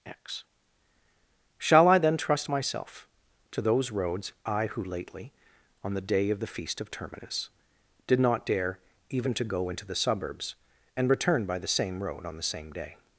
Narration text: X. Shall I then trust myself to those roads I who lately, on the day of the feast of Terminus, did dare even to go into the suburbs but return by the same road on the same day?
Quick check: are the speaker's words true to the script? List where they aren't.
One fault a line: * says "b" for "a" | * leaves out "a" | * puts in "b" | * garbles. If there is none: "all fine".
* puts in "not"
* says "and" for "but"